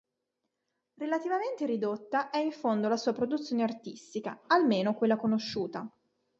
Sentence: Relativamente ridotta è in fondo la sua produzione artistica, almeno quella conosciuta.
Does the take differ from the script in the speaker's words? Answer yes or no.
no